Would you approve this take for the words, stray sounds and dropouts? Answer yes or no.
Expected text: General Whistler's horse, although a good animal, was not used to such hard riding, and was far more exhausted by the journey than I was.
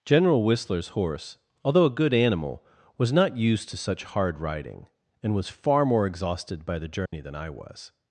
no